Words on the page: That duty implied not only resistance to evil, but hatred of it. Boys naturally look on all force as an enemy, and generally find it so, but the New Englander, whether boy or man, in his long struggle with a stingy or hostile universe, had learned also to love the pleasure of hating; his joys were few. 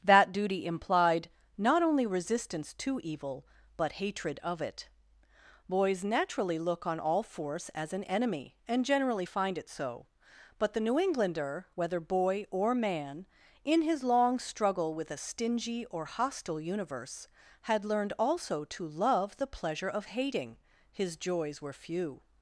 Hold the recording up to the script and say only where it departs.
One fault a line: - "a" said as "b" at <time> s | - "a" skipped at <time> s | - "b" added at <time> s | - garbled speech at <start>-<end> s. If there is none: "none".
none